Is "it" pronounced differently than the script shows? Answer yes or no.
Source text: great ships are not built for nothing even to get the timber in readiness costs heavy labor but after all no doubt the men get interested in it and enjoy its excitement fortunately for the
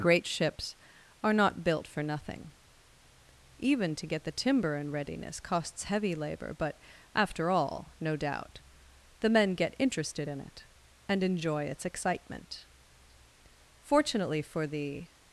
no